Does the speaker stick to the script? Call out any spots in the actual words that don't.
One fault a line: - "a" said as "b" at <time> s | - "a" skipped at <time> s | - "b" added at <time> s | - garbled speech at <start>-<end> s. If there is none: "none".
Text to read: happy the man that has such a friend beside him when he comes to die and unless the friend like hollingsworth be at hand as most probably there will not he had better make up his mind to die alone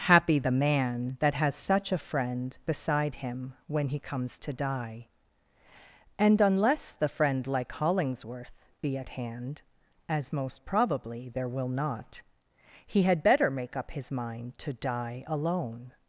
none